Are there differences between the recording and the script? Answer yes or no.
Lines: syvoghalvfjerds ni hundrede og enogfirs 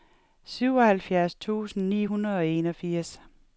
yes